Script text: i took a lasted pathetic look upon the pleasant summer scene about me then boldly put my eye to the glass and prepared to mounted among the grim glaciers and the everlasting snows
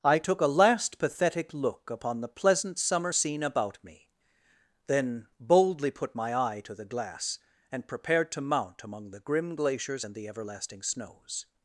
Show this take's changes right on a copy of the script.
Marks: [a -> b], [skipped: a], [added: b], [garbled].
i took a [lasted -> last] pathetic look upon the pleasant summer scene about me then boldly put my eye to the glass and prepared to [mounted -> mount] among the grim glaciers and the everlasting snows